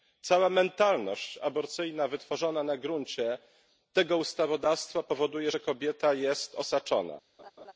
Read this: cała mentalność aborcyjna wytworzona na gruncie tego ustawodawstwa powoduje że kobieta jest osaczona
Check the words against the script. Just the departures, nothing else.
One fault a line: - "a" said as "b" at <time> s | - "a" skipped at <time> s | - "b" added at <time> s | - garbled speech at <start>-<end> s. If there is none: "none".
none